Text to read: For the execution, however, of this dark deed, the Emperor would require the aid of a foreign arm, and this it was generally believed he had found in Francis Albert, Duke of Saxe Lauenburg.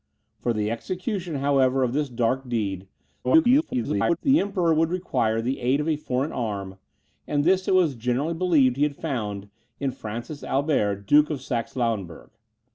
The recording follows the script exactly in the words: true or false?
false